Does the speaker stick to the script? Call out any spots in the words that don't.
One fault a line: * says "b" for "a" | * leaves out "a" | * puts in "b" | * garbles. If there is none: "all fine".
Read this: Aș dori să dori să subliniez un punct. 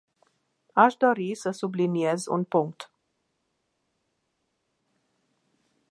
* leaves out "dori să"